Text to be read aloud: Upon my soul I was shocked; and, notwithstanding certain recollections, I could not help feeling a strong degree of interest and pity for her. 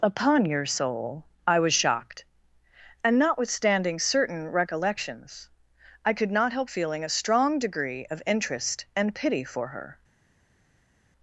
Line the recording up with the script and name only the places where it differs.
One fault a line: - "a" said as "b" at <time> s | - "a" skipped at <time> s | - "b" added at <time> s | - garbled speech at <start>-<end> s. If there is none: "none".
- "my" said as "your" at 0.5 s